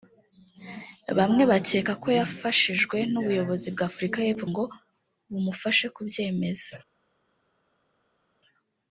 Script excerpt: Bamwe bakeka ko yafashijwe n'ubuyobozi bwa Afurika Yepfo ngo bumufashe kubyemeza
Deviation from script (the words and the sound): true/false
false